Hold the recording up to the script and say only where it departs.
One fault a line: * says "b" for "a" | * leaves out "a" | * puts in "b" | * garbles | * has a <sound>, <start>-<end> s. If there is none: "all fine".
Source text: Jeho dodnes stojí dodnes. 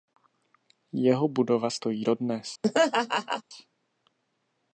* says "budova" for "dodnes"
* has a laugh, 2.6-3.4 s